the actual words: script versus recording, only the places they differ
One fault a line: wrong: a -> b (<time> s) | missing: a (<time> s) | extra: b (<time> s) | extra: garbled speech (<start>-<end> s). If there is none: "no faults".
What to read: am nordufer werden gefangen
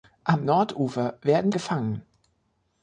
no faults